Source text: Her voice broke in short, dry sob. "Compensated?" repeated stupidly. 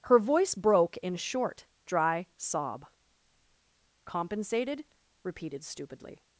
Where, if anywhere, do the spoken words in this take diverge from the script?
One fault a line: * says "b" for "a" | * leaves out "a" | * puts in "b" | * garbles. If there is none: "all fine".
all fine